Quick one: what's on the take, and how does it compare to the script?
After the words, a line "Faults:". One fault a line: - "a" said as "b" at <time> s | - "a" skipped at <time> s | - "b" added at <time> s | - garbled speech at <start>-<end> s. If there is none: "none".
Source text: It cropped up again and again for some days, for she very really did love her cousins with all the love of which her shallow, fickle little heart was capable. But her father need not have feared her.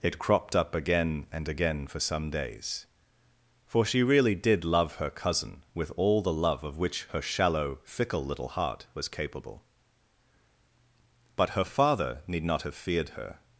It cropped up again and again for some days, for she really did love her cousin with all the love of which her shallow, fickle little heart was capable. But her father need not have feared her.
Faults:
- "very" skipped at 4.0 s
- "cousins" said as "cousin" at 5.1 s